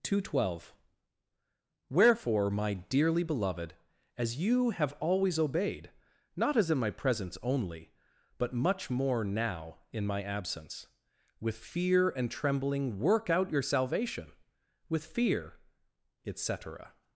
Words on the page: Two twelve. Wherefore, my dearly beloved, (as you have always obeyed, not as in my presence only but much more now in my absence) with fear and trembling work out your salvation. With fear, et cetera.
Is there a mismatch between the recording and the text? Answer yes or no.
no